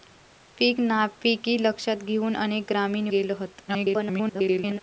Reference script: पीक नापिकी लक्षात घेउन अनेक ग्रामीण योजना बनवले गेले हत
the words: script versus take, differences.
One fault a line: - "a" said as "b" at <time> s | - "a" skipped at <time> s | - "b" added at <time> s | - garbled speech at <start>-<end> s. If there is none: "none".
- "योजना बनवले" skipped at 3.1 s
- garbled speech at 3.7-4.8 s